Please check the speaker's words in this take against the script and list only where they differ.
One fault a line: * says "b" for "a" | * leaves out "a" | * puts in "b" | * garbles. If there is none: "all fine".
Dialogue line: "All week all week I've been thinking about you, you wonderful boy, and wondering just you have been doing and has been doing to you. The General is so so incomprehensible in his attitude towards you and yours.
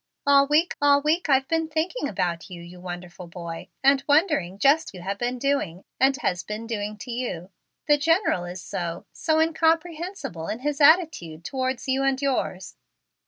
all fine